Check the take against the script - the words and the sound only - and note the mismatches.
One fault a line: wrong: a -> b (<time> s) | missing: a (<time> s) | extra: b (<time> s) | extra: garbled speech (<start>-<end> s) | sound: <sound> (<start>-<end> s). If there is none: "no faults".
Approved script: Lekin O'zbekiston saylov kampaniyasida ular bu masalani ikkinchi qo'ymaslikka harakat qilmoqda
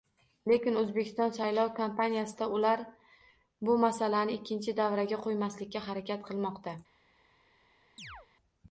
extra: davraga (4.8 s)
sound: chirp (8.0-8.3 s)